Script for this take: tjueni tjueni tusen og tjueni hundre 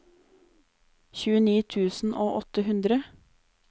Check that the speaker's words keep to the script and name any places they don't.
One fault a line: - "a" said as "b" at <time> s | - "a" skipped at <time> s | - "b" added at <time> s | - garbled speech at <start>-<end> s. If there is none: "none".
- "tjueni" skipped at 1.6 s
- "tjueni" said as "åtte" at 2.4 s